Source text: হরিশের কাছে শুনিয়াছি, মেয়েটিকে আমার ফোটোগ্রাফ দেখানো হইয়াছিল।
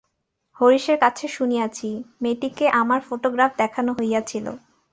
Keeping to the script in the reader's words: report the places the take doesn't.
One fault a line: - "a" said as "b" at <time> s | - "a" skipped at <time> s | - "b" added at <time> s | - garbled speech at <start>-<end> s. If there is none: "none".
none